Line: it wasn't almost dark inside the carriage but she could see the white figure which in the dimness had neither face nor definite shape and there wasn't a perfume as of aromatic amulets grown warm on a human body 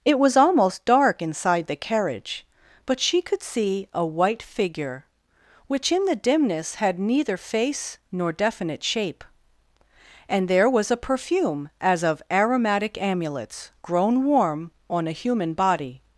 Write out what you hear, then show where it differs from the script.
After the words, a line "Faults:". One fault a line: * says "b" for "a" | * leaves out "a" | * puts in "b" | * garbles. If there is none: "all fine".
it was almost dark inside the carriage but she could see a white figure which in the dimness had neither face nor definite shape and there was a perfume as of aromatic amulets grown warm on a human body
Faults:
* says "was" for "wasn't"
* says "a" for "the"
* says "was" for "wasn't"